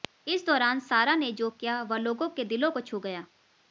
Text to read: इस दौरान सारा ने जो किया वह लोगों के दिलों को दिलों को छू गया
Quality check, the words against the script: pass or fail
fail